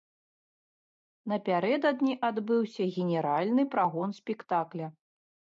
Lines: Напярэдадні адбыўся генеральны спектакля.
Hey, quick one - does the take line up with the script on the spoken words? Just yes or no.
no